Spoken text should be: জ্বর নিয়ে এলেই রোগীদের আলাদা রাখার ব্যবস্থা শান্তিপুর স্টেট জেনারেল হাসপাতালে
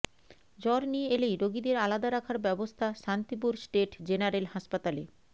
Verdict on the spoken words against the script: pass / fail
pass